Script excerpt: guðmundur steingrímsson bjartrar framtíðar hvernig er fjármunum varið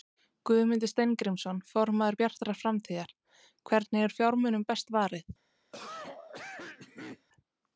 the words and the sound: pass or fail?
fail